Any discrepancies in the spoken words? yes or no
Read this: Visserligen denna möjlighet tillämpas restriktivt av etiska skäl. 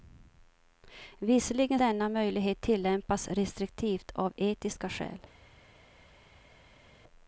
no